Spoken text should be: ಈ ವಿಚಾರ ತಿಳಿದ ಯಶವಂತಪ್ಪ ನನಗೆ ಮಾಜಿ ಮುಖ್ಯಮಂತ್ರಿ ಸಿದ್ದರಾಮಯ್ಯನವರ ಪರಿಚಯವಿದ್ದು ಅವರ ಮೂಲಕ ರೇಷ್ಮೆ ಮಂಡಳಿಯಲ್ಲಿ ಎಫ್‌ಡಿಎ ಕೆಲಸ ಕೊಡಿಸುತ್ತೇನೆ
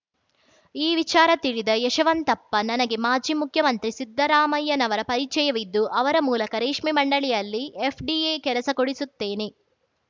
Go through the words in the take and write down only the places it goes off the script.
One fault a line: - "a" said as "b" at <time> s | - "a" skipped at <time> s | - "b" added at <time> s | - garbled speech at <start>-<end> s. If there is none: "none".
none